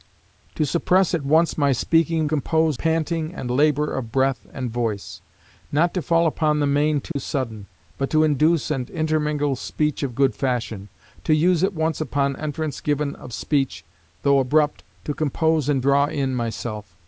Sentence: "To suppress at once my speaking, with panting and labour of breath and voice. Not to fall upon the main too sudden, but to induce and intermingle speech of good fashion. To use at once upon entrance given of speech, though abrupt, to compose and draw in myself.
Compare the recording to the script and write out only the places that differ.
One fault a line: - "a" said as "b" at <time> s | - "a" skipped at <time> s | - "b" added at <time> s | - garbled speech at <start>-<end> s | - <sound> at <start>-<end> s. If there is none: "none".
- "with" said as "compose" at 2.2 s
- dropout at 7.1-7.2 s